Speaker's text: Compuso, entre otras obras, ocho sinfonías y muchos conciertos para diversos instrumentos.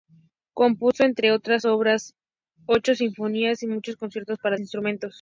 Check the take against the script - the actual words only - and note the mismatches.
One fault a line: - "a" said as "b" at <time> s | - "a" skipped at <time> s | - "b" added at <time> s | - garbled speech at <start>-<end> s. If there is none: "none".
- "diversos" skipped at 4.6 s